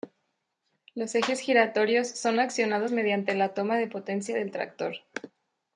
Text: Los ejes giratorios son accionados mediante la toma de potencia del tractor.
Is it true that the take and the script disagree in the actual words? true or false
false